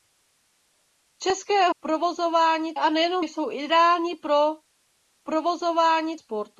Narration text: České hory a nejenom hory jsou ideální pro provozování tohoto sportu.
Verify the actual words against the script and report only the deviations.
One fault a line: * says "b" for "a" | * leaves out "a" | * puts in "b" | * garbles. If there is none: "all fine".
* says "provozování" for "hory"
* leaves out "hory"
* leaves out "tohoto"